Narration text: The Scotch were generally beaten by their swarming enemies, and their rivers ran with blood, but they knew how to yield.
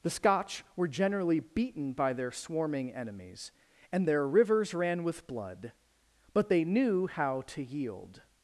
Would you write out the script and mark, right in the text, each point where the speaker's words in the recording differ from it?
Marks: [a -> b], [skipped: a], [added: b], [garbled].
The Scotch were generally beaten by their swarming enemies, and their rivers ran with blood, but they knew how to yield.